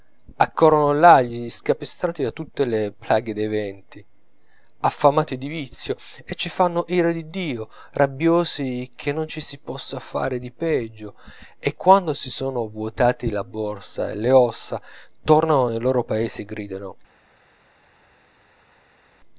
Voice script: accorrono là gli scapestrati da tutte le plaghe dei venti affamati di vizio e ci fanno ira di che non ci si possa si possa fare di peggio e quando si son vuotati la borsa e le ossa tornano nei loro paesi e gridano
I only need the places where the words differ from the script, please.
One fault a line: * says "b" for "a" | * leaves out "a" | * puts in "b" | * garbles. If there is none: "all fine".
* puts in "dio rabbiosi"
* leaves out "si possa"